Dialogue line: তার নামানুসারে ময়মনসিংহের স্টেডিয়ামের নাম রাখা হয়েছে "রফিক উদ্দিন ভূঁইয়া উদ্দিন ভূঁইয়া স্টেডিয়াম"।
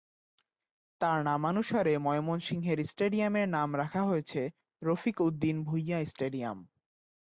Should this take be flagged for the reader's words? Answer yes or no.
yes